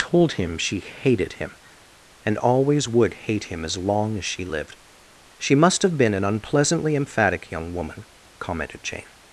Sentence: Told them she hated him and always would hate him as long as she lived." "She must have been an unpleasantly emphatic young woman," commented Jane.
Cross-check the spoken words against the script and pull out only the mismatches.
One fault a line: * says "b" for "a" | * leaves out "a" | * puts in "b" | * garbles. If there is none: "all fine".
* says "him" for "them"